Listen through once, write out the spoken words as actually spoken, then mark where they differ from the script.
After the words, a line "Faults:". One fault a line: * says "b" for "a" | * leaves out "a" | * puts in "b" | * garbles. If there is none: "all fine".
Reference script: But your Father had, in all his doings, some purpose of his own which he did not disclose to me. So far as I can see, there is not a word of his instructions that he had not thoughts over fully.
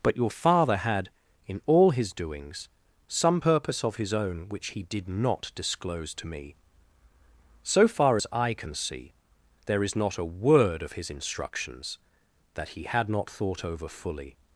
But your Father had, in all his doings, some purpose of his own which he did not disclose to me. So far as I can see, there is not a word of his instructions that he had not thought over fully.
Faults:
* says "thought" for "thoughts"